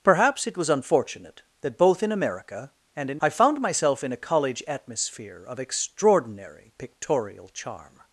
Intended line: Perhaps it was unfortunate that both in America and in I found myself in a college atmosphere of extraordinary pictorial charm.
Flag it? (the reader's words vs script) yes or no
no